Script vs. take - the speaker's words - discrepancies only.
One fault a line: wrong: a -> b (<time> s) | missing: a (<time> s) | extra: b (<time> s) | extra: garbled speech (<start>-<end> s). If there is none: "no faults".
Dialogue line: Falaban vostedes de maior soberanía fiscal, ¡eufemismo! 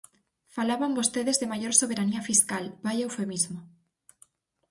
extra: vaia (2.9 s)